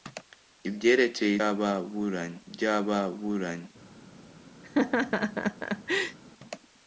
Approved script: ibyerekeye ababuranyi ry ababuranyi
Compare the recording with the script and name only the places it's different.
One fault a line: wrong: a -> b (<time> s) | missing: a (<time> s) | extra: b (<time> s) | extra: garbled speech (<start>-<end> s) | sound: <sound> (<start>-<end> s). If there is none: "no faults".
sound: laugh (4.6-6.2 s)